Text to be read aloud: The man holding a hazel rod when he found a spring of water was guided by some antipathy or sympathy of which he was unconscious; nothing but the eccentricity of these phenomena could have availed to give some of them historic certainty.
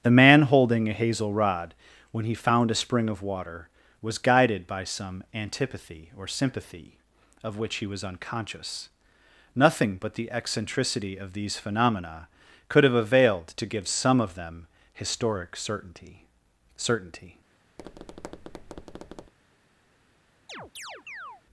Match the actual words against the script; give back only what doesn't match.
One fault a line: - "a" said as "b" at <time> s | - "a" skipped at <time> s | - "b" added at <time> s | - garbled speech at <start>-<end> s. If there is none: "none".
- "certainty" added at 16.8 s